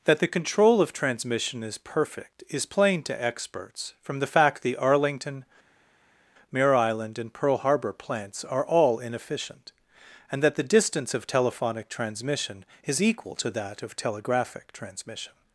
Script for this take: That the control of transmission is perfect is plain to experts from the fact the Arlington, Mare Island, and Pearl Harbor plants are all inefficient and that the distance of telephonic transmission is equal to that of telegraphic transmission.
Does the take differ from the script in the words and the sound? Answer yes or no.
no